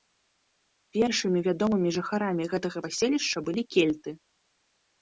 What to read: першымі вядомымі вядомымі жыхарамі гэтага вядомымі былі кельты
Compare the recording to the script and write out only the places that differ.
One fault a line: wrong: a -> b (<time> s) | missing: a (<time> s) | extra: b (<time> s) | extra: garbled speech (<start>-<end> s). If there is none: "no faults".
missing: вядомымі (1.9 s)
wrong: вядомымі -> паселішча (2.9 s)